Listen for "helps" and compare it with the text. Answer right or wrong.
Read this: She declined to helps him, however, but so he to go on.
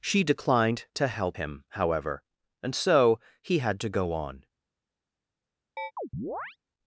wrong